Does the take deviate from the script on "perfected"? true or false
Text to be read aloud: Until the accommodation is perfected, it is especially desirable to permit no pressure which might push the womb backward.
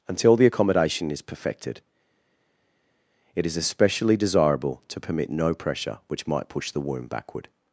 false